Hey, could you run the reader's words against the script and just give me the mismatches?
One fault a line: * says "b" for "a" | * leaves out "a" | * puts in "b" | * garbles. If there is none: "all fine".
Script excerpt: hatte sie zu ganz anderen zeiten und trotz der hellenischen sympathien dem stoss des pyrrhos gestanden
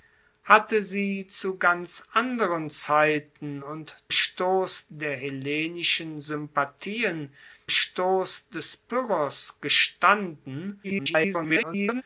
* says "stoss" for "trotz"
* leaves out "dem"
* garbles